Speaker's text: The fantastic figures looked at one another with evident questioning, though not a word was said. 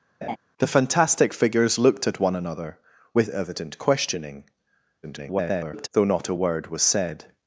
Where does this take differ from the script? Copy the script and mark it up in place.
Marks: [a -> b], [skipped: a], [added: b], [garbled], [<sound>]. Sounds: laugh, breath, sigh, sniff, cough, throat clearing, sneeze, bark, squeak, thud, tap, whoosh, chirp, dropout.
[laugh] The fantastic figures looked at one another with evident questioning, [garbled] though not a word was said.